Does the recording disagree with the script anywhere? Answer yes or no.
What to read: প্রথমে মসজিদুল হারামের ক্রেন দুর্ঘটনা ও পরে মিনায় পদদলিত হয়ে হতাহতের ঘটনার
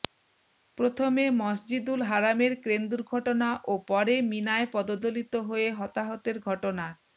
no